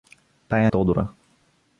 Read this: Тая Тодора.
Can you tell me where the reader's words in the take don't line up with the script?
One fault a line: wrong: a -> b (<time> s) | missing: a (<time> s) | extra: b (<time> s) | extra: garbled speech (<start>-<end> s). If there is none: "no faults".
no faults